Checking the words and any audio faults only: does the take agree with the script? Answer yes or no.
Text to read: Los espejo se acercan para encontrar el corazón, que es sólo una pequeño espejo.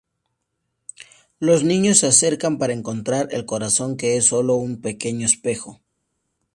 no